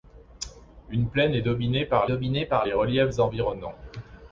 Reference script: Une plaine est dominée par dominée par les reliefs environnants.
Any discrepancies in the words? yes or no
no